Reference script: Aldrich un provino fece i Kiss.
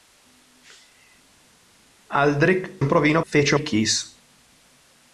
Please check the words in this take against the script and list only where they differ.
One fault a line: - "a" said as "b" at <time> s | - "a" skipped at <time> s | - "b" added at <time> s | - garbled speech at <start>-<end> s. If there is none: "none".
none